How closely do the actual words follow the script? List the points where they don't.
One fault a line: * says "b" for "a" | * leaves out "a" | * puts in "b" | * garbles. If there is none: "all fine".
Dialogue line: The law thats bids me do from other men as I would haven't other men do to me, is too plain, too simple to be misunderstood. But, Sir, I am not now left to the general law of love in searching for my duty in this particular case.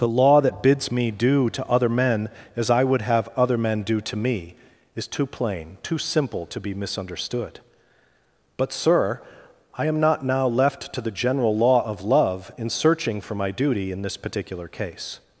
* says "that" for "thats"
* says "to" for "from"
* says "have" for "haven't"